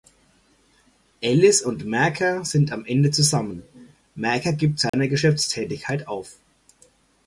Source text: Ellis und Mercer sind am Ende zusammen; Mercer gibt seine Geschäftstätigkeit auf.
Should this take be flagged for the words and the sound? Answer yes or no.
yes